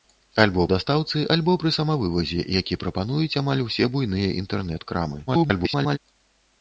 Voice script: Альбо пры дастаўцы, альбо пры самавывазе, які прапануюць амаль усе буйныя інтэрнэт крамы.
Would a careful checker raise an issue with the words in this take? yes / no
yes